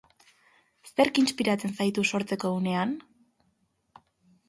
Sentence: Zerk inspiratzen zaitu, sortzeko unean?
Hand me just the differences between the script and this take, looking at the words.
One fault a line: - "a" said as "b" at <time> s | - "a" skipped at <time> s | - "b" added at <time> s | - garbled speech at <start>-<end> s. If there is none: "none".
none